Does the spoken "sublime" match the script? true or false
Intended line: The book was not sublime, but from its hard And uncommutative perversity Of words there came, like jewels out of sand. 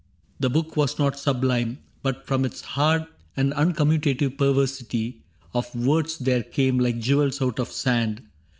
true